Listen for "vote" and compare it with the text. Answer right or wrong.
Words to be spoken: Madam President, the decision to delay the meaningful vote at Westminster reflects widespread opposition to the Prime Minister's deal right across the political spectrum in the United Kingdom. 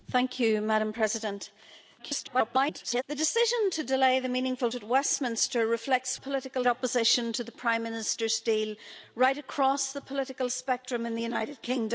wrong